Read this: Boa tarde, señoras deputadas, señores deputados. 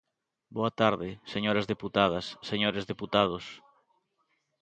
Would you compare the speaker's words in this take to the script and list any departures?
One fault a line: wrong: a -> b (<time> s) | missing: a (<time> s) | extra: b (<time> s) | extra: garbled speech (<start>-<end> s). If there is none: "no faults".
no faults